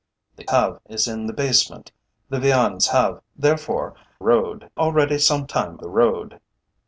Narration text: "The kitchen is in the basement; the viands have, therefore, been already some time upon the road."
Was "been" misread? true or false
true